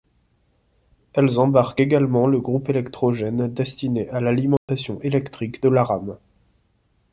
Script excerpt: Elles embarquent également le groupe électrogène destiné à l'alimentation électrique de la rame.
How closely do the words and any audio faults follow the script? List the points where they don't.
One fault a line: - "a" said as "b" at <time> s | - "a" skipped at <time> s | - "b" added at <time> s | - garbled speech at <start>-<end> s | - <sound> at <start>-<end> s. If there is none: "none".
- dropout at 4.6-4.7 s